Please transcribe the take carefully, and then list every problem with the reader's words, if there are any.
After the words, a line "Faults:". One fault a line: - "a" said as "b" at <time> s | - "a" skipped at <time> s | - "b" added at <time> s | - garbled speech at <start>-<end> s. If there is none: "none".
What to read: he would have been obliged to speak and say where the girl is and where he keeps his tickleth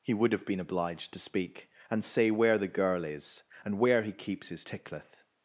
he would have been obliged to speak and say where the girl is and where he keeps his tickleth
Faults:
none